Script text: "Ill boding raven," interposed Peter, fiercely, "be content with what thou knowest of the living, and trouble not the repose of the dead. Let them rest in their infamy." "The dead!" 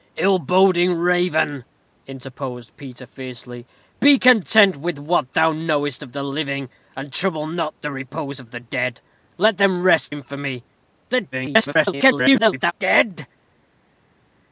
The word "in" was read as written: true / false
false